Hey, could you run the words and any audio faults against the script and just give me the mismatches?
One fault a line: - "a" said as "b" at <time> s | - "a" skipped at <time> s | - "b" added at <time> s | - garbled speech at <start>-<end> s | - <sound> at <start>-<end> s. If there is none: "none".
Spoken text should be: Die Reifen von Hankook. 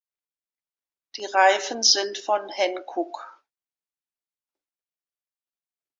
- "sind" added at 1.8 s